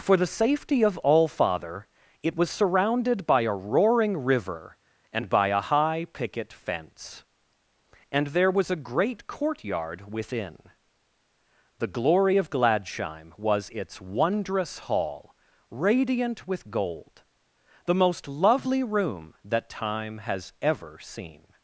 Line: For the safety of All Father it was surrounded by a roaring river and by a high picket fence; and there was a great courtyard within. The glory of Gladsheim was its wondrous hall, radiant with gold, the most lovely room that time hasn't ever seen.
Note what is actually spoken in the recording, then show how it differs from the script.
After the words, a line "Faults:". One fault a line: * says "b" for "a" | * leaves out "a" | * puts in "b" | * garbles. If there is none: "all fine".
For the safety of All Father it was surrounded by a roaring river and by a high picket fence; and there was a great courtyard within. The glory of Gladsheim was its wondrous hall, radiant with gold, the most lovely room that time has ever seen.
Faults:
* says "has" for "hasn't"